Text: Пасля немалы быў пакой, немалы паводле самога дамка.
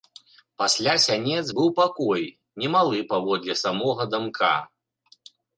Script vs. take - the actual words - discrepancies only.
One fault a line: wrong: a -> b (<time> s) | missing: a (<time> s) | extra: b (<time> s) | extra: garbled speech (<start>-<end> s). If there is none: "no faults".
wrong: немалы -> сянец (1.0 s)